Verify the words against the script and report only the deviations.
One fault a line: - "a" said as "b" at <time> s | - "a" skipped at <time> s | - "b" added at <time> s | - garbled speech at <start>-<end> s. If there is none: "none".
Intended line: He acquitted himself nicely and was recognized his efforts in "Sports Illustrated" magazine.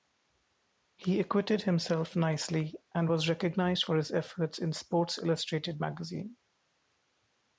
- "for" added at 3.8 s